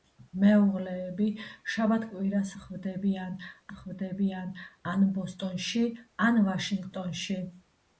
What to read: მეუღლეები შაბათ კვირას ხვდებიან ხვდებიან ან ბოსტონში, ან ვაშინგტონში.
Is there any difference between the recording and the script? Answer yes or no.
no